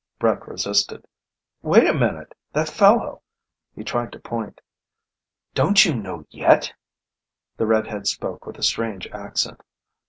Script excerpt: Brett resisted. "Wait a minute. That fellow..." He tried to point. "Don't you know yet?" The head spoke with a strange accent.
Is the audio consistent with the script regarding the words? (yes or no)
no